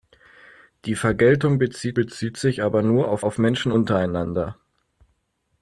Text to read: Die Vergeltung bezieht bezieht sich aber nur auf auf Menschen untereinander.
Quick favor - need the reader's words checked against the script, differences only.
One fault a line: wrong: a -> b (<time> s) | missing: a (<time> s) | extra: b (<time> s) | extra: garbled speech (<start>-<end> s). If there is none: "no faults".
no faults